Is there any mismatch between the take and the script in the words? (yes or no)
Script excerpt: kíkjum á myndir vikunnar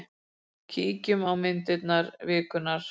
no